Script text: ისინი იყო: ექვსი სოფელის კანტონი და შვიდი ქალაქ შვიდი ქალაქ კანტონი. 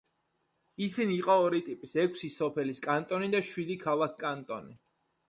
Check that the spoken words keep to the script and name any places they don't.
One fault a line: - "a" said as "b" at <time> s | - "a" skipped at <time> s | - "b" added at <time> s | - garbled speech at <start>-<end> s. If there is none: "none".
- "ორი ტიპის" added at 1.4 s
- "შვიდი ქალაქ" skipped at 4.2 s